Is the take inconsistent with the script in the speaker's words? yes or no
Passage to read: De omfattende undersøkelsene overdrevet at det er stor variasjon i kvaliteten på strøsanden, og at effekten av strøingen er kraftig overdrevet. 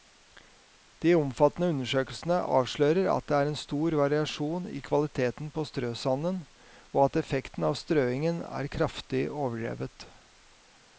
yes